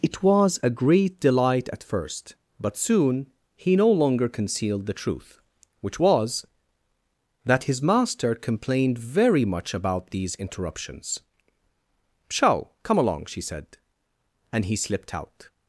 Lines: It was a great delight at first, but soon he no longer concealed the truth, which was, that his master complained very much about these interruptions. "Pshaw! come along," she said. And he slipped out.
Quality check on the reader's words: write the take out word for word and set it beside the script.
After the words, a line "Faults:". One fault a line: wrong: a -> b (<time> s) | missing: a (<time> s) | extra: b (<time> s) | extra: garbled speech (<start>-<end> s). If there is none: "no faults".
It was a great delight at first, but soon he no longer concealed the truth, which was, that his master complained very much about these interruptions. "Pshaw! come along," she said. And he slipped out.
Faults:
no faults